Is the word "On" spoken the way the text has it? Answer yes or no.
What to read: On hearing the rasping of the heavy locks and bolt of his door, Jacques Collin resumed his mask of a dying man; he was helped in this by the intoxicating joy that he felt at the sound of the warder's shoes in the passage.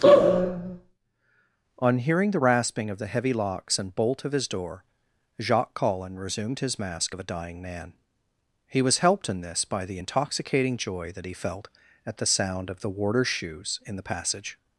yes